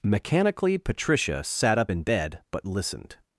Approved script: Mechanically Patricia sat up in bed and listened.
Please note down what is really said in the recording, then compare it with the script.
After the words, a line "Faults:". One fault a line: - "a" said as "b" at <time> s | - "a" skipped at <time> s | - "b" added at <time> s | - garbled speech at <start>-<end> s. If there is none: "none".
Mechanically Patricia sat up in bed but listened.
Faults:
- "and" said as "but" at 2.5 s